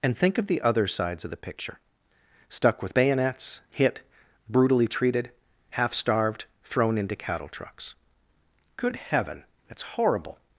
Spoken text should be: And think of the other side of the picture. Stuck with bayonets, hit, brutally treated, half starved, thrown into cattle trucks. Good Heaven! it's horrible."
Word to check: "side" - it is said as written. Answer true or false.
false